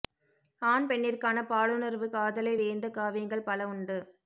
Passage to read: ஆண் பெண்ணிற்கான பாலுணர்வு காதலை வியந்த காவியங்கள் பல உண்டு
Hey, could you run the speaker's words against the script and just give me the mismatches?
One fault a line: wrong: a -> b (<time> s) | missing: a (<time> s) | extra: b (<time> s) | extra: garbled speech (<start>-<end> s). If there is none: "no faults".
no faults